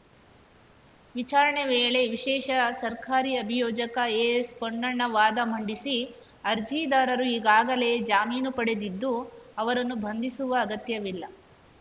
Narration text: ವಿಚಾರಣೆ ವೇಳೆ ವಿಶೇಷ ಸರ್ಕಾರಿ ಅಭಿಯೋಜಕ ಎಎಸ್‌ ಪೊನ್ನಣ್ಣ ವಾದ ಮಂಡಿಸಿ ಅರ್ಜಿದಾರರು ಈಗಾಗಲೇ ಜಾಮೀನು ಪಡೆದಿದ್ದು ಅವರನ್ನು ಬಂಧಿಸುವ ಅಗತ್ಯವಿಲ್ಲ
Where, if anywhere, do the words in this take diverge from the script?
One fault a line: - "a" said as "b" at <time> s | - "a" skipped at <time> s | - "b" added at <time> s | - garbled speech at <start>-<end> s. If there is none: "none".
none